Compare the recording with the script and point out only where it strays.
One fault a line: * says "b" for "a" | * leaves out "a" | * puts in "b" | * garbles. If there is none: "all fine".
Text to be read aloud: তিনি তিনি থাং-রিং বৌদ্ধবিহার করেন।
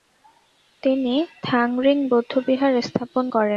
* leaves out "তিনি"
* puts in "স্থাপন"